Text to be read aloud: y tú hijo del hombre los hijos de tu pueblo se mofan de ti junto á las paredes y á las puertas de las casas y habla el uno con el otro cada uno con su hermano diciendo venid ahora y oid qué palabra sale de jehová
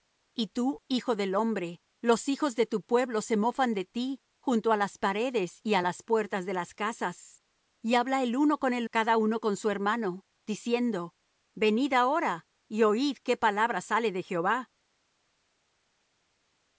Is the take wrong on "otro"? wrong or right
wrong